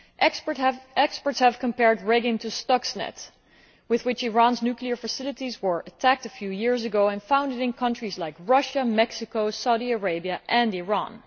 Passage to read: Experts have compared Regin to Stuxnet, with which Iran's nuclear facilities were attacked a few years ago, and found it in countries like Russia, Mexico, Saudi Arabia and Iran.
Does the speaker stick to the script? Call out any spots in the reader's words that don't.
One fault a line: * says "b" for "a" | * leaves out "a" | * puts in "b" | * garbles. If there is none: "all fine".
all fine